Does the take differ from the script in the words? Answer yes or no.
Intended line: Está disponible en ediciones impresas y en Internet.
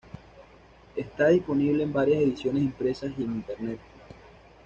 yes